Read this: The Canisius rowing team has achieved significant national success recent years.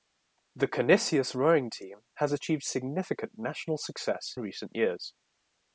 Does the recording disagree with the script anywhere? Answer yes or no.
no